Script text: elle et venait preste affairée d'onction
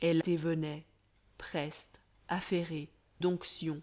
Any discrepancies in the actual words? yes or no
no